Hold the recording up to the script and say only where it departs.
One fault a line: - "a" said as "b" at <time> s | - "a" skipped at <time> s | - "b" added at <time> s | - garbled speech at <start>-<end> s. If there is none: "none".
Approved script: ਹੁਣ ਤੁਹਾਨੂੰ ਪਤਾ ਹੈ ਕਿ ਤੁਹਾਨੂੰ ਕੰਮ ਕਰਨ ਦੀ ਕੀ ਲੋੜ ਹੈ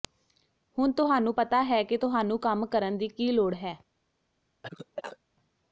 none